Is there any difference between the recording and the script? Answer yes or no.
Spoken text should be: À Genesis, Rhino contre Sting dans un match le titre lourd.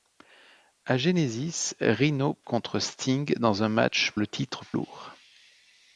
no